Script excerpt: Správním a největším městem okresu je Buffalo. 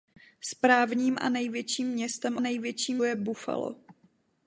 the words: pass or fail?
fail